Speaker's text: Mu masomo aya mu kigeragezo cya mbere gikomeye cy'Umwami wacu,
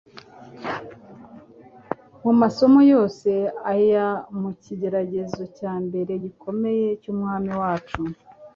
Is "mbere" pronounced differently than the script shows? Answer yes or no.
no